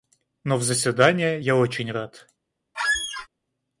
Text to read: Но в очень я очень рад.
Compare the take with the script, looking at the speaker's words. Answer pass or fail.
fail